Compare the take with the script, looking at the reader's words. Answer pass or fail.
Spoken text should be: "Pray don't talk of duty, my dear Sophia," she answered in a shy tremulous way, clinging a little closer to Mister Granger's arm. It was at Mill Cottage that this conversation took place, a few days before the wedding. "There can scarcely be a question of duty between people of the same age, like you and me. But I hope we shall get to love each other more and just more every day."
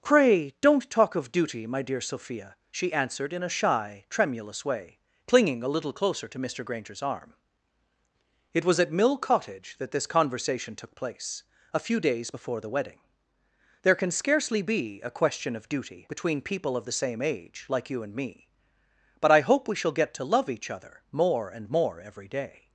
fail